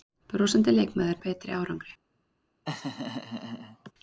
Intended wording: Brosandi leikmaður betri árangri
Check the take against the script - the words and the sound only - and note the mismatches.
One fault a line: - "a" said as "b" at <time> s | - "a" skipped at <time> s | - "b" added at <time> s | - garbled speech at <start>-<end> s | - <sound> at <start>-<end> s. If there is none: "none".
- laugh at 2.6-3.9 s